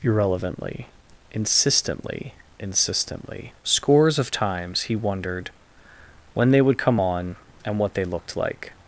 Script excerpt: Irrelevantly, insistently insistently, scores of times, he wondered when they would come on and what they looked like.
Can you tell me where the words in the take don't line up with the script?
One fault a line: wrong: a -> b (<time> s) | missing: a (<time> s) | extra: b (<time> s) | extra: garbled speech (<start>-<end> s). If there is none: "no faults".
no faults